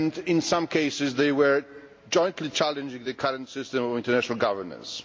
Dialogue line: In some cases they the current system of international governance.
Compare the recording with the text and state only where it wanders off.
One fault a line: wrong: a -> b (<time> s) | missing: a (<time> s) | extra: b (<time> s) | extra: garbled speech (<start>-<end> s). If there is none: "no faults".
extra: were jointly challenging (1.3 s)